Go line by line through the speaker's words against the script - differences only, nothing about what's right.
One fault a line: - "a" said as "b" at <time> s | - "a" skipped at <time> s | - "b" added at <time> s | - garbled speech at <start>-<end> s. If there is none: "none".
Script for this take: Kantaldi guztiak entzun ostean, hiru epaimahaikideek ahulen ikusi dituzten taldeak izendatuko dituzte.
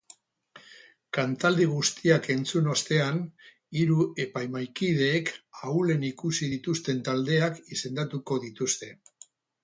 none